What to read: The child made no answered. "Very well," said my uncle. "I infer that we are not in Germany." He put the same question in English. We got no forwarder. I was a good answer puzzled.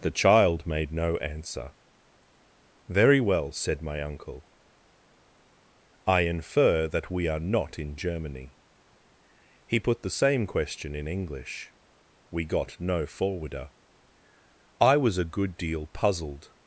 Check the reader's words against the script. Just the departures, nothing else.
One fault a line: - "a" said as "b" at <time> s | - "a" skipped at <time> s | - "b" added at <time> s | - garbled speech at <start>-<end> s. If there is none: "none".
- "answered" said as "answer" at 1.2 s
- "answer" said as "deal" at 15.6 s